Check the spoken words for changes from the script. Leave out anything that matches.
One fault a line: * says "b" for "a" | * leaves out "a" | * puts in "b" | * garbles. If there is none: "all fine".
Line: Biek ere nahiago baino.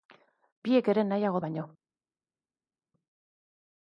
all fine